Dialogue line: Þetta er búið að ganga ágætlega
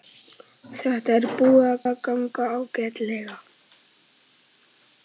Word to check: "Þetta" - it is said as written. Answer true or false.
true